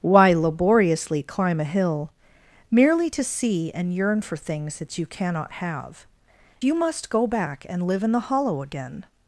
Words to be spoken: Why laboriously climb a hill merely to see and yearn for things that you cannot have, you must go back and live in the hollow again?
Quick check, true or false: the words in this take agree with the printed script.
true